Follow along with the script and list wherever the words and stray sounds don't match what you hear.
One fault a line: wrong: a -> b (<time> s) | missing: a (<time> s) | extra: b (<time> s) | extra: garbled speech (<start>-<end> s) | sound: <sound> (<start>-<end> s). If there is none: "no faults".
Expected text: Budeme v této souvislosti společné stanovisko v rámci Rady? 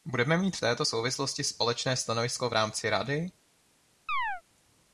extra: mít (0.4 s)
sound: chirp (4.1-4.4 s)